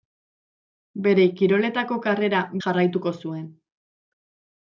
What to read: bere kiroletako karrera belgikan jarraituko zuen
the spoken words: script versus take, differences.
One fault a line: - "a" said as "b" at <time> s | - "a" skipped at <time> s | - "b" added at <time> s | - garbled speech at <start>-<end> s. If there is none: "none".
- "belgikan" skipped at 2.4 s